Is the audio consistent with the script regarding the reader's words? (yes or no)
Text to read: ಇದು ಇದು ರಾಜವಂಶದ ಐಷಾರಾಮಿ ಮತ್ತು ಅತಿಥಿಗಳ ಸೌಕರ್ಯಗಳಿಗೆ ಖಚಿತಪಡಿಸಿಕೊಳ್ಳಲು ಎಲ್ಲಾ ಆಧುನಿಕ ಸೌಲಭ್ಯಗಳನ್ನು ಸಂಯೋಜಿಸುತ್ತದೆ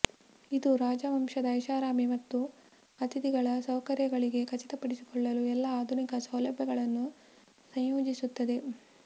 no